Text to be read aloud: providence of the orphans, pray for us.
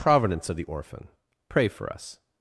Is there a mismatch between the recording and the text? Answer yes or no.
yes